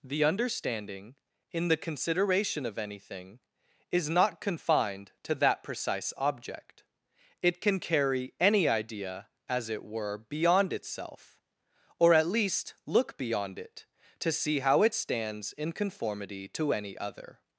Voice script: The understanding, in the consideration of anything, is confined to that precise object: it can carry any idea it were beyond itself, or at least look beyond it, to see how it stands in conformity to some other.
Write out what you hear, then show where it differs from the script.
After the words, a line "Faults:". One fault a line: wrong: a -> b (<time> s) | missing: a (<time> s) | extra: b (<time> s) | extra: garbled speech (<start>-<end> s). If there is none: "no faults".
The understanding, in the consideration of anything, is not confined to that precise object: it can carry any idea as it were beyond itself, or at least look beyond it, to see how it stands in conformity to any other.
Faults:
extra: not (4.1 s)
extra: as (9.5 s)
wrong: some -> any (16.7 s)